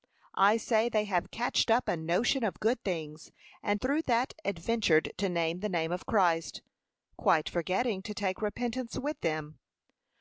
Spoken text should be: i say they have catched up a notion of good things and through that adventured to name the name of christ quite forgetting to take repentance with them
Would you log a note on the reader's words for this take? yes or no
no